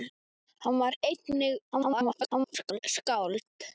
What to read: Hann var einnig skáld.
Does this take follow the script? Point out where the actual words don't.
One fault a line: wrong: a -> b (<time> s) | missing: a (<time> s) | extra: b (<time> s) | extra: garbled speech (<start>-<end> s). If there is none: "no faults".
extra: garbled speech (1.7-2.8 s)